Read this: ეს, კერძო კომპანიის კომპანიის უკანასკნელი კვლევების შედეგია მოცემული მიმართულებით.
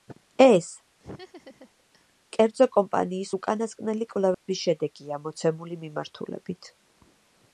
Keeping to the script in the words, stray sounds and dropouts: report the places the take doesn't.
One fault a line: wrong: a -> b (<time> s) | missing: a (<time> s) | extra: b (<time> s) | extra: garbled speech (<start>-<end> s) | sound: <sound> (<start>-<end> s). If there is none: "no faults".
sound: laugh (1.0-2.1 s)
missing: კომპანიის (3.3 s)
sound: dropout (4.3-4.5 s)